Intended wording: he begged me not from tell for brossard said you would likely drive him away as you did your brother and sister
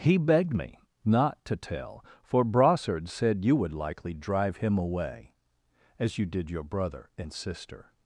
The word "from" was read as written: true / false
false